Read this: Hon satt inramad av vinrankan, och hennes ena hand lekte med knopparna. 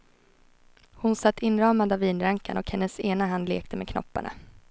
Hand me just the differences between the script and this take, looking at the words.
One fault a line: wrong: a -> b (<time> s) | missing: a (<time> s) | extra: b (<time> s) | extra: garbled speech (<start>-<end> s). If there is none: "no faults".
no faults